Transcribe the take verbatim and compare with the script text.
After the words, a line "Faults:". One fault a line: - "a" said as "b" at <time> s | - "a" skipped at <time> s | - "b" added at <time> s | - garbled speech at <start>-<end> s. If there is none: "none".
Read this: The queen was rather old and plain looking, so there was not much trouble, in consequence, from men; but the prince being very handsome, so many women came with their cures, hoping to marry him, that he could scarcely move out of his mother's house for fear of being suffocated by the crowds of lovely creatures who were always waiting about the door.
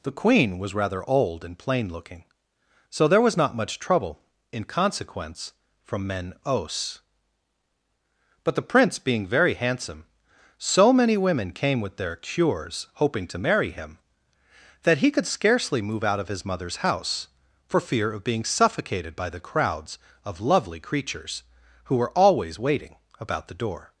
The queen was rather old and plain looking, so there was not much trouble, in consequence, from men; os but the prince being very handsome, so many women came with their cures, hoping to marry him, that he could scarcely move out of his mother's house for fear of being suffocated by the crowds of lovely creatures who were always waiting about the door.
Faults:
- "os" added at 6.5 s